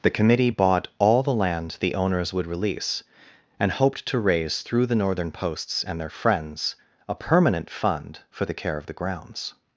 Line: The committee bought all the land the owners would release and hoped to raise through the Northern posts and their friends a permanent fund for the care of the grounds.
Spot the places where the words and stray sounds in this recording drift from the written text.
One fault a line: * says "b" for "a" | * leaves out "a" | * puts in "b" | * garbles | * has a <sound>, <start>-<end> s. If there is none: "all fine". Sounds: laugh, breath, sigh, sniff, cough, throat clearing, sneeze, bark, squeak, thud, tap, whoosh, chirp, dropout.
all fine